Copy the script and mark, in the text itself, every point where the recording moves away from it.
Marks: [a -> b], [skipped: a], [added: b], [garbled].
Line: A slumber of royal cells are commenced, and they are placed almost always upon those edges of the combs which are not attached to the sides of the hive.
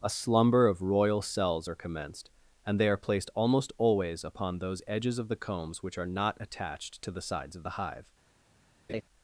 A slumber of royal cells are commenced, and they are placed almost always upon those edges of the combs which are not attached to the sides of the hive.